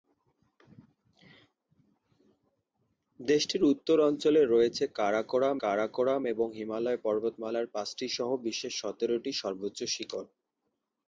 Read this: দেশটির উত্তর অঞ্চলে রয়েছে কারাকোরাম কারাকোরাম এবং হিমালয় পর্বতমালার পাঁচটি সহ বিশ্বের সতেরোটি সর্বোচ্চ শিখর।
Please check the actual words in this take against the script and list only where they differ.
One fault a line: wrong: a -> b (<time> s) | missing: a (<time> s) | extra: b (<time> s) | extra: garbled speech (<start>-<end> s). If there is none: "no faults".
no faults